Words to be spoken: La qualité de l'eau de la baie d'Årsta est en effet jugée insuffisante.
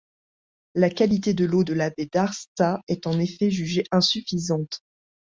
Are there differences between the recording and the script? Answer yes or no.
no